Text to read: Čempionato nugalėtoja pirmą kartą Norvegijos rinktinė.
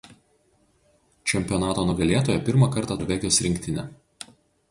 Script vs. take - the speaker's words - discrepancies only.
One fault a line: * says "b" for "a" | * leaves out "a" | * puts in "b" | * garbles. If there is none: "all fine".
all fine